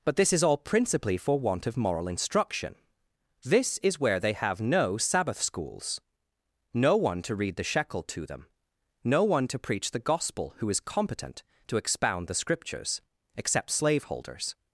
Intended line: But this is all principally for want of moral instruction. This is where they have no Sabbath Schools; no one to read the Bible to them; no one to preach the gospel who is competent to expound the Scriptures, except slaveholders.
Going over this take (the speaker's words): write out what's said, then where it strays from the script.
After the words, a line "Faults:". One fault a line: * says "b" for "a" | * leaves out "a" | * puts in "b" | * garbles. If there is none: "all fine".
But this is all principally for want of moral instruction. This is where they have no Sabbath Schools; no one to read the Shekel to them; no one to preach the gospel who is competent to expound the Scriptures, except slaveholders.
Faults:
* says "Shekel" for "Bible"